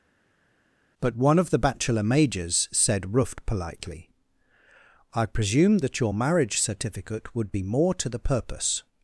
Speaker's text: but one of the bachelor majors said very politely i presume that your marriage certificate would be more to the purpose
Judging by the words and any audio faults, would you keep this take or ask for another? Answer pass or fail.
fail